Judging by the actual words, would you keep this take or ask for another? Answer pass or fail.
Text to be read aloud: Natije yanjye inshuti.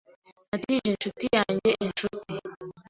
fail